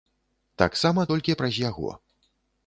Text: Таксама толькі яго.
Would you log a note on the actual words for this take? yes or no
yes